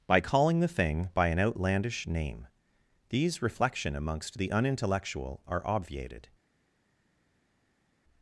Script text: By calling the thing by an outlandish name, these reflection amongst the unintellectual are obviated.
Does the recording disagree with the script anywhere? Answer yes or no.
no